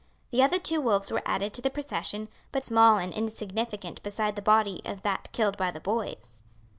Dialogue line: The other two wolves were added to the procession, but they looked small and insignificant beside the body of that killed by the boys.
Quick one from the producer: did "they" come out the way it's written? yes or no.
no